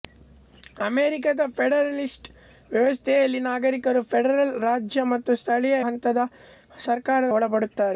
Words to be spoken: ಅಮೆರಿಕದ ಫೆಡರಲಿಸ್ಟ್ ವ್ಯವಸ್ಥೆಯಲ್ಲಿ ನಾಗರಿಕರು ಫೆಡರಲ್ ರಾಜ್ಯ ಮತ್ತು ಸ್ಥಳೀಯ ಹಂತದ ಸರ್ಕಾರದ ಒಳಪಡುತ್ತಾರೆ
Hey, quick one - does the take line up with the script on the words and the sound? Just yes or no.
yes